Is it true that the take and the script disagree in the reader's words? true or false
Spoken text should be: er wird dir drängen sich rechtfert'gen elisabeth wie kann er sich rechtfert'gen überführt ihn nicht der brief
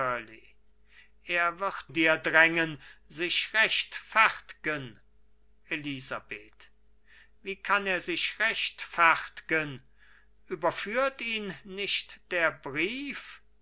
false